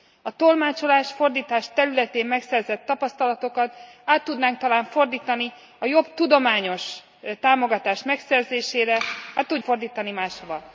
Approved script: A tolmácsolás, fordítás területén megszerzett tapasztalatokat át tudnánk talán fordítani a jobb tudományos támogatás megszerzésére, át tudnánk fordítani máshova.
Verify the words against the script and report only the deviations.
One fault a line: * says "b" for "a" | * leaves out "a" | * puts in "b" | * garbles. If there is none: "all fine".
* leaves out "át tudnánk"